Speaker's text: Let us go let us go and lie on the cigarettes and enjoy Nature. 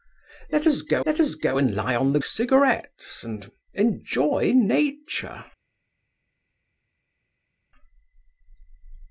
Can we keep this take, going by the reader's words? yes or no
yes